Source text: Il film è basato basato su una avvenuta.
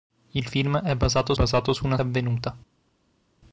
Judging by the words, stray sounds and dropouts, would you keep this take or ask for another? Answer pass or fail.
pass